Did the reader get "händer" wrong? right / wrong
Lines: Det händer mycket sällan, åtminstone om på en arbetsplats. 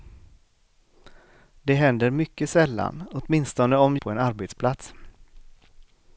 right